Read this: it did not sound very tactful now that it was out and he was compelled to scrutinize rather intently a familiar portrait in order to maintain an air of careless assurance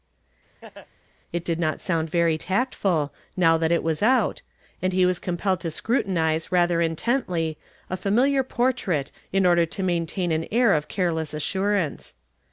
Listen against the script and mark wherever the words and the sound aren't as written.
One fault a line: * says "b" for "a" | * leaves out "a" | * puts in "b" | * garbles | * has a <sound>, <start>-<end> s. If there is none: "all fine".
* has a laugh, 0.6-0.9 s